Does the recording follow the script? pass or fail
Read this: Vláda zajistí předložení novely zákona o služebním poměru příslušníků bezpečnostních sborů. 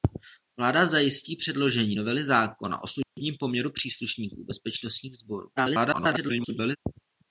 fail